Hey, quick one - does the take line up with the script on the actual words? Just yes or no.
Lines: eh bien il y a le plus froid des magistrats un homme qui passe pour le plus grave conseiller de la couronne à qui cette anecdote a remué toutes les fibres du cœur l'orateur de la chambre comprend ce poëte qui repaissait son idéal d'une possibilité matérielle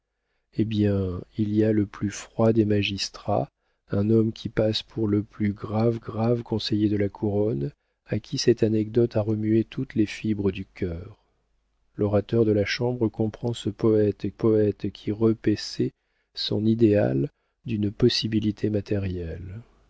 no